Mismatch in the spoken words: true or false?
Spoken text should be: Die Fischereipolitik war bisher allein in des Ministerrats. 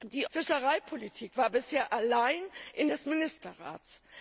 false